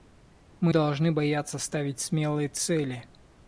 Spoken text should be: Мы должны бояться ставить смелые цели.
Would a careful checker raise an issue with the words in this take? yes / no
no